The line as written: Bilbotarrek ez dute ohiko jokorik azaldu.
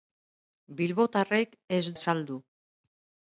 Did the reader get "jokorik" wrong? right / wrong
wrong